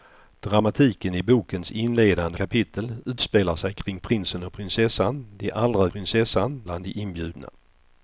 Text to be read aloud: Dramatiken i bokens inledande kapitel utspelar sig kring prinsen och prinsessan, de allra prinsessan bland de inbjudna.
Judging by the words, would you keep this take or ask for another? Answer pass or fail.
pass